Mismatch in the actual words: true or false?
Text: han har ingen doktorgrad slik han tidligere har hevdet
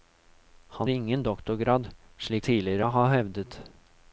true